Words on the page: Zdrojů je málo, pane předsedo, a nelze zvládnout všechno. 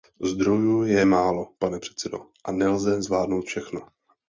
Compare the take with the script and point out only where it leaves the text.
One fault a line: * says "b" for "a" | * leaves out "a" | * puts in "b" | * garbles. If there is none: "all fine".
all fine